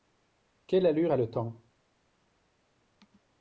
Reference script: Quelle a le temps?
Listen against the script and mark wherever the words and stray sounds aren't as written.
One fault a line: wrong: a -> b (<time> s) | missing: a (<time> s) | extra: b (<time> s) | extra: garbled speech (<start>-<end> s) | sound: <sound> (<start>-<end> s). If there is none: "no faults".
extra: allure (0.9 s)